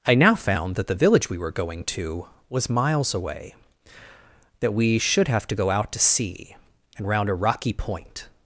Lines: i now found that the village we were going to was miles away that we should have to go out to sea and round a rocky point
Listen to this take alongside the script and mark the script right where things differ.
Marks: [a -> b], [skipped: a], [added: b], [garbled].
i now found that the village we were going to was miles away that we should have to go out to sea and round a rocky point